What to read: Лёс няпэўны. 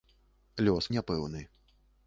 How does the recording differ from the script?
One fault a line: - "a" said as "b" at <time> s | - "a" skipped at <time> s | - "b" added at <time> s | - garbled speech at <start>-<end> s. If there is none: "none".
none